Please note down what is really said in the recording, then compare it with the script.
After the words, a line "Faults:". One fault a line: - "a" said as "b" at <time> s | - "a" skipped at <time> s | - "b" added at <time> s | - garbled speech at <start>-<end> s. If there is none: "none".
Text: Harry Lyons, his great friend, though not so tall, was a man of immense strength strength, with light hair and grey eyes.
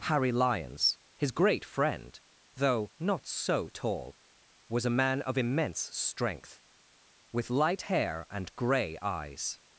Harry Lyons, his great friend, though not so tall, was a man of immense strength, with light hair and grey eyes.
Faults:
- "strength" skipped at 6.6 s